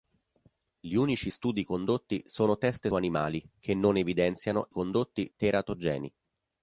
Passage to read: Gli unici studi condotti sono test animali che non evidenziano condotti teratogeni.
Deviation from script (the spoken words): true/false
false